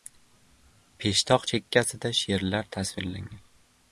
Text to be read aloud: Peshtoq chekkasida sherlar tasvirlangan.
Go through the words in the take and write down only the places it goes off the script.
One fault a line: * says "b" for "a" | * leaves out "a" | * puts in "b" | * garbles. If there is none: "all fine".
all fine